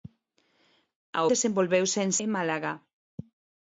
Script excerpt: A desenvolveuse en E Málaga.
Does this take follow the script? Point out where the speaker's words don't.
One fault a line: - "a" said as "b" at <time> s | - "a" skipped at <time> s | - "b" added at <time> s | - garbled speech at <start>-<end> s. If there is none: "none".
none